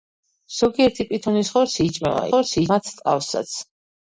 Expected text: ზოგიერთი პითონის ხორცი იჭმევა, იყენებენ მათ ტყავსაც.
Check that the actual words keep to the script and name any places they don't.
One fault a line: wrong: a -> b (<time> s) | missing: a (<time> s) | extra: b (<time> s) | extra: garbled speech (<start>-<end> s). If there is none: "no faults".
wrong: იყენებენ -> ხორცი (2.3 s)